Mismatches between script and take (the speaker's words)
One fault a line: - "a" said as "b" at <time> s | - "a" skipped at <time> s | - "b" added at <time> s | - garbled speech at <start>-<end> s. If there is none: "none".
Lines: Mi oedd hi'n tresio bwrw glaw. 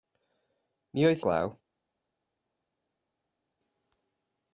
- "hi'n tresio bwrw" skipped at 1.2 s